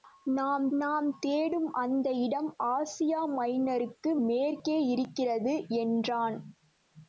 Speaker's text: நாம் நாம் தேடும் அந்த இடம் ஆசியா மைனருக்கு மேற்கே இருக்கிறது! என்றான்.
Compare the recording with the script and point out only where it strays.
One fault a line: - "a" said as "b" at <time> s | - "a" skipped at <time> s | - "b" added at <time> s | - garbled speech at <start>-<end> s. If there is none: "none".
none